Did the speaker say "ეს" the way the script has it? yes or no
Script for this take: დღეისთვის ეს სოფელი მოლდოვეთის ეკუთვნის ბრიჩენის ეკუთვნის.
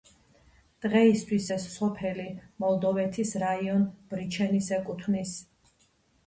yes